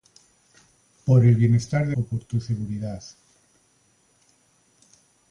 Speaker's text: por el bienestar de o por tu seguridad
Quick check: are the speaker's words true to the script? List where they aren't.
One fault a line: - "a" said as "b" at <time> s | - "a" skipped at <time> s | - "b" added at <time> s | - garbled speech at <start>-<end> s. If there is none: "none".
none